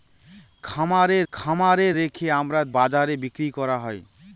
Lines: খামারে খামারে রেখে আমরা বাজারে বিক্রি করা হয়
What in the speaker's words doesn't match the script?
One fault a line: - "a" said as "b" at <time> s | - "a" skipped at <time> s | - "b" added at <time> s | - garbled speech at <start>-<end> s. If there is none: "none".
none